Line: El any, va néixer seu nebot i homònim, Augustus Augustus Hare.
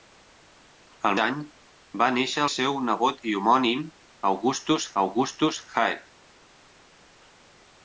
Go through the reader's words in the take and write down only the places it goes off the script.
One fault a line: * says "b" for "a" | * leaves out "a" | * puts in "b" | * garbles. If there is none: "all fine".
all fine